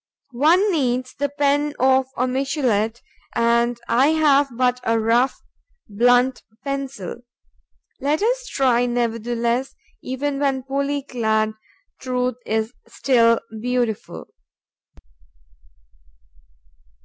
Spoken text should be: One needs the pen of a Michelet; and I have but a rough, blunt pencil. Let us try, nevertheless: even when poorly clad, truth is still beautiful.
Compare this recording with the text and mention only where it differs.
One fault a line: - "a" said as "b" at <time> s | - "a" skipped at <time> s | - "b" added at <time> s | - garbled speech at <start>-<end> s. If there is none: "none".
none